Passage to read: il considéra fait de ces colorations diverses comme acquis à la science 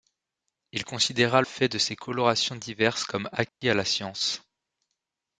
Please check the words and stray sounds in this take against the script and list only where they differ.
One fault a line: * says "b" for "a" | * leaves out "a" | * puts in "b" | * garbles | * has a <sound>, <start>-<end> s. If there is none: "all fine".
* has a dropout, 3.5-3.6 s